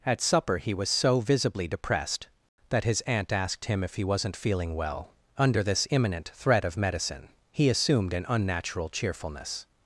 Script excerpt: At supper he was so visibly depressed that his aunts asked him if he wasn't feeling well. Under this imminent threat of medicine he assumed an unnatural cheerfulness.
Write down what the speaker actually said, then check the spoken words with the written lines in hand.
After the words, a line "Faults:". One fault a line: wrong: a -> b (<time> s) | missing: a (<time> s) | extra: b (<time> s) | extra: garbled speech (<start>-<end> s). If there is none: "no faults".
At supper he was so visibly depressed that his aunt asked him if he wasn't feeling well. Under this imminent threat of medicine he assumed an unnatural cheerfulness.
Faults:
wrong: aunts -> aunt (3.0 s)